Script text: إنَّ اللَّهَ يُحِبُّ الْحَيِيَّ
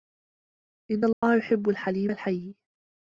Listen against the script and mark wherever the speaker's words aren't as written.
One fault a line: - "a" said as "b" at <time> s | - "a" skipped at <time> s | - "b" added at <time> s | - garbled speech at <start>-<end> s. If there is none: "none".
- "الْحَلِيمَ" added at 1.7 s